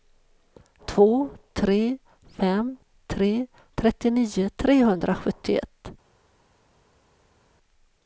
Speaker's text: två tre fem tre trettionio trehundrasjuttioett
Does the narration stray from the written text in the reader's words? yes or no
no